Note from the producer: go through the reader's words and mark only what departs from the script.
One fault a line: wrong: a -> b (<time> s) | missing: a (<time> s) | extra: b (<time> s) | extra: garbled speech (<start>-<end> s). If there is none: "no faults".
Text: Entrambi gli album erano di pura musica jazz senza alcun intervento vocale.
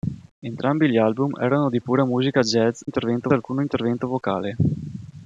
wrong: senza -> intervento (2.8 s)